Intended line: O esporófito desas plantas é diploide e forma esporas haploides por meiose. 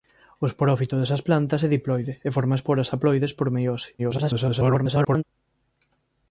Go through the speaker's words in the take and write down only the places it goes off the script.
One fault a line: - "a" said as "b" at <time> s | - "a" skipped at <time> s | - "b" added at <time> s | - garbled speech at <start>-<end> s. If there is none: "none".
- garbled speech at 4.0-5.2 s